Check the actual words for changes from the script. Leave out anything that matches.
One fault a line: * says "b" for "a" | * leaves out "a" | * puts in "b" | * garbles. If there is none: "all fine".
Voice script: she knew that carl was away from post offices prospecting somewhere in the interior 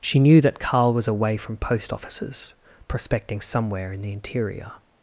all fine